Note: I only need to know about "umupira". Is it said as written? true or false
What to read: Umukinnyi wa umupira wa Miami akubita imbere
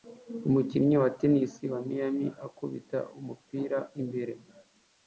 false